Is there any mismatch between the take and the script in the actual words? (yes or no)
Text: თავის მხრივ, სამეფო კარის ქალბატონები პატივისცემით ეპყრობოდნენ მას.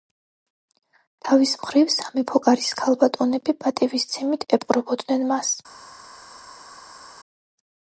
no